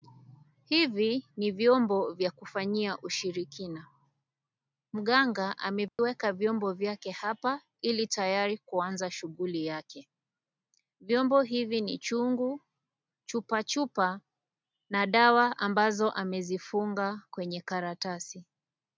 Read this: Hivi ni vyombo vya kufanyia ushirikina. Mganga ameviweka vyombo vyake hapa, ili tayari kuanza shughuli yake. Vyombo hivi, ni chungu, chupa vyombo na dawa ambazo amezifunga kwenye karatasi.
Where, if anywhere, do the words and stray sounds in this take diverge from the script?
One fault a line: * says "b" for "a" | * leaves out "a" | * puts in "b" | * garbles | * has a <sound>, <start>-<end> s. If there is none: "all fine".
* has a dropout, 5.9-6.0 s
* says "chupa" for "vyombo"